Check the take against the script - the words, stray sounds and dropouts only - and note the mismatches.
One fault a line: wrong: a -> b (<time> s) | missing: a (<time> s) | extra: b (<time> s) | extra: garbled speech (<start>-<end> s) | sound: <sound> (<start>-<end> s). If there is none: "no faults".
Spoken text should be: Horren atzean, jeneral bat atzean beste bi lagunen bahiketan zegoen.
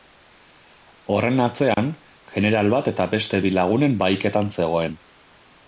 sound: dropout (1.7-1.8 s)
wrong: atzean -> eta (3.0 s)